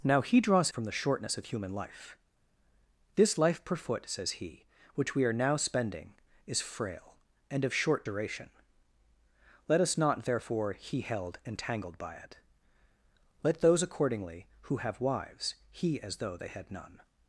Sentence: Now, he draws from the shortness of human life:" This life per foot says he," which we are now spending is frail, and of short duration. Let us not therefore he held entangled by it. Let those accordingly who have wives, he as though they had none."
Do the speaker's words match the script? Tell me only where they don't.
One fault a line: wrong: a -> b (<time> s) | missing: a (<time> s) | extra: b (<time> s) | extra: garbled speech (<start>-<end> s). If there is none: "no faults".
no faults